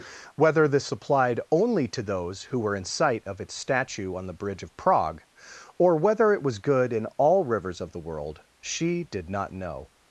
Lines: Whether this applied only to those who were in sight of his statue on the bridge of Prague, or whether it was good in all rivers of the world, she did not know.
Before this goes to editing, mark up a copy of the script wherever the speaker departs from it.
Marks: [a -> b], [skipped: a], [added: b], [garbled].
Whether this applied only to those who were in sight of [his -> its] statue on the bridge of Prague, or whether it was good in all rivers of the world, she did not know.